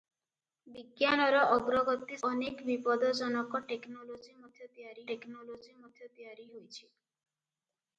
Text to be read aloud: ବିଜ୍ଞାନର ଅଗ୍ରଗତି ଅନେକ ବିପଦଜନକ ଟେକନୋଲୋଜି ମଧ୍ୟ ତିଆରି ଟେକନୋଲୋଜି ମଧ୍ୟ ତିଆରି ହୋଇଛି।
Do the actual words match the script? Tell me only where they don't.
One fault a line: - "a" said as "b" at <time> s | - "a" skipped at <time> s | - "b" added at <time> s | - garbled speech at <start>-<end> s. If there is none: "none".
none